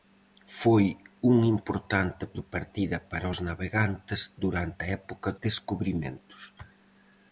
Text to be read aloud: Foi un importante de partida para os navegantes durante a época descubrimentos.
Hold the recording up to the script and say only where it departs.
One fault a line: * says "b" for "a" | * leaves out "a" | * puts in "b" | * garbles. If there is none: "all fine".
all fine